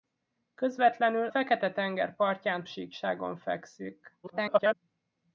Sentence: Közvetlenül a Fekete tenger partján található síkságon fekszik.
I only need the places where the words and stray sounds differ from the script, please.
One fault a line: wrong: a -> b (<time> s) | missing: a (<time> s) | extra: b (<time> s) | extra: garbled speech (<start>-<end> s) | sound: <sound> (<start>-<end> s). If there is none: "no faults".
missing: a (1.3 s)
missing: található (2.6 s)
extra: garbled speech (4.2-4.7 s)